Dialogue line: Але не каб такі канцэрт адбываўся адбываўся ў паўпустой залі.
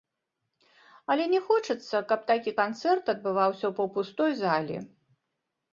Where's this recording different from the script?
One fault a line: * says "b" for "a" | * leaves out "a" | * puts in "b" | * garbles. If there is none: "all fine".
* puts in "хочацца"
* leaves out "адбываўся"